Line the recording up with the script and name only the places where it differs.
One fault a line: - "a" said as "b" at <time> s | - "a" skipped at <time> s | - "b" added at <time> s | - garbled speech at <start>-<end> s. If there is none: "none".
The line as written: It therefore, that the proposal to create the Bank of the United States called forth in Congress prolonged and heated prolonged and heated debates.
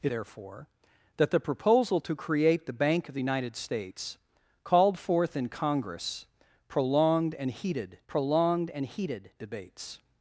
none